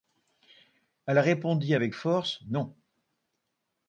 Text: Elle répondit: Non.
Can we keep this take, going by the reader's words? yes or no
no